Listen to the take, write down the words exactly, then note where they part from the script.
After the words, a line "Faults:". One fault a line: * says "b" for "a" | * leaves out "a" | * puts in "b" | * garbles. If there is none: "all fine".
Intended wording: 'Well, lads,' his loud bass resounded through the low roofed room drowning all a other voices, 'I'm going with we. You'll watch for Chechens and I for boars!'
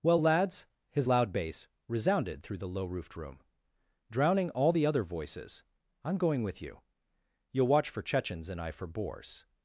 'Well, lads,' his loud bass resounded through the low roofed room drowning all the other voices, 'I'm going with you. You'll watch for Chechens and I for boars!'
Faults:
* says "the" for "a"
* says "you" for "we"